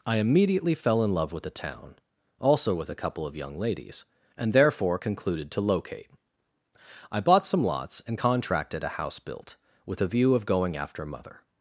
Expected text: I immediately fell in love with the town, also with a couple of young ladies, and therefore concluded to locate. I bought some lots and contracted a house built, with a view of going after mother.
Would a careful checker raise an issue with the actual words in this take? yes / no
no